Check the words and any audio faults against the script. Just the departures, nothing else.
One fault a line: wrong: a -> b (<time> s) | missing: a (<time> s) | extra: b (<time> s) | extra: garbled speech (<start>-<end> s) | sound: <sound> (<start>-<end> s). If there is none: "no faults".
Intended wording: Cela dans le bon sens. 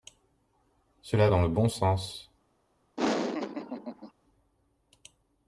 sound: laugh (3.0-4.1 s)